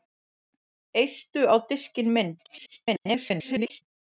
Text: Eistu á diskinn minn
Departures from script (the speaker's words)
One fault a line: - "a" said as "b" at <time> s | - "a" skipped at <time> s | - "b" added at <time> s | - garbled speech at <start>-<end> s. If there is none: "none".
- garbled speech at 2.4-3.8 s